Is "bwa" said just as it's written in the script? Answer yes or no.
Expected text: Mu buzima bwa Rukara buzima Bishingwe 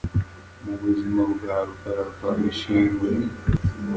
yes